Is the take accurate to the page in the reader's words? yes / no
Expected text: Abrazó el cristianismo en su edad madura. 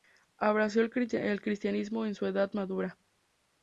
yes